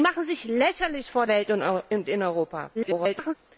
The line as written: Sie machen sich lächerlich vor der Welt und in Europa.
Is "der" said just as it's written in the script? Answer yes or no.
no